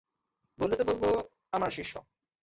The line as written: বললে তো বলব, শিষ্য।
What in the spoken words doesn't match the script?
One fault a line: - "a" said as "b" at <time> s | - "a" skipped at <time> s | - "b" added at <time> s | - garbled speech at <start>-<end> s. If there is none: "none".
- "আমার" added at 1.5 s